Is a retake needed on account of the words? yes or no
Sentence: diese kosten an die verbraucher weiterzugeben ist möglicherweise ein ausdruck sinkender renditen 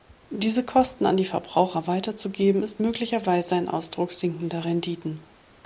no